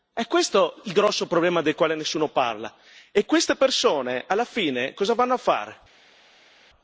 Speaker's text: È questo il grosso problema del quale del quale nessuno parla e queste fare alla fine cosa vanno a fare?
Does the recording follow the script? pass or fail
fail